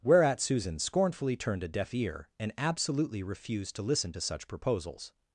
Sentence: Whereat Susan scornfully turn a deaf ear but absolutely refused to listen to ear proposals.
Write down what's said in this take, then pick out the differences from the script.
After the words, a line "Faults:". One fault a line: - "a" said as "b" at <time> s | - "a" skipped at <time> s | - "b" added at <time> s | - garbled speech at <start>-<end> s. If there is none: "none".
Whereat Susan scornfully turned a deaf ear and absolutely refused to listen to such proposals.
Faults:
- "turn" said as "turned" at 1.4 s
- "but" said as "and" at 2.4 s
- "ear" said as "such" at 4.2 s